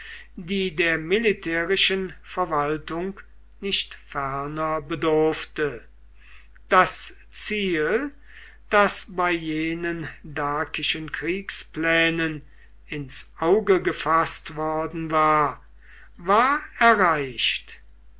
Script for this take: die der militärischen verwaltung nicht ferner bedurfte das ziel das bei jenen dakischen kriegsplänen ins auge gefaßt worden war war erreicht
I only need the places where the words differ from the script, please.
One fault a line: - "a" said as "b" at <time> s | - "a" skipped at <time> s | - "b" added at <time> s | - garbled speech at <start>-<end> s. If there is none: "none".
none